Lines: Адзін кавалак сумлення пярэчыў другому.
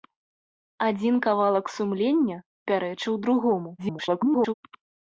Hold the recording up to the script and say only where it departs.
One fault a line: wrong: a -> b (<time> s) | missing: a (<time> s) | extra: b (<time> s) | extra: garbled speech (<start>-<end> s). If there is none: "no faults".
extra: garbled speech (3.8-4.5 s)